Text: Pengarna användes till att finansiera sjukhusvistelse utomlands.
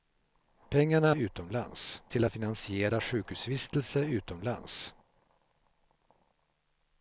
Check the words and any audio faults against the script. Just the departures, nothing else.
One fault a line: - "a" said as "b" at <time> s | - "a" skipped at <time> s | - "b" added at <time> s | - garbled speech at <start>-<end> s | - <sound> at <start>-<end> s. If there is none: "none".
- "användes" said as "utomlands" at 1.1 s